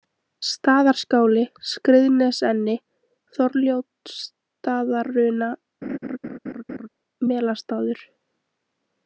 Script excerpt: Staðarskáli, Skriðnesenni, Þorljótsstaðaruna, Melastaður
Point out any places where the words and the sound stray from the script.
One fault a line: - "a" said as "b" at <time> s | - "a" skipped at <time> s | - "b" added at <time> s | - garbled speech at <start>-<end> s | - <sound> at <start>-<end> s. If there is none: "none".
- laugh at 5.8-6.9 s